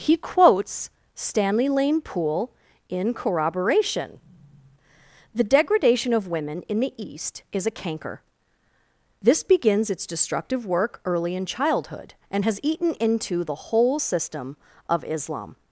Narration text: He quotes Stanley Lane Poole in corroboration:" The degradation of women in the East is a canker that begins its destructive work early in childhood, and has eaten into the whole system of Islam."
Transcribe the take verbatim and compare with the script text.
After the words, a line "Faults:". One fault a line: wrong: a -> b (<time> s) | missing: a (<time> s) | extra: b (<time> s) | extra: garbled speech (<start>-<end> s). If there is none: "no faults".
He quotes Stanley Lane Poole in corroboration:" The degradation of women in the East is a canker this begins its destructive work early in childhood, and has eaten into the whole system of Islam."
Faults:
wrong: that -> this (9.2 s)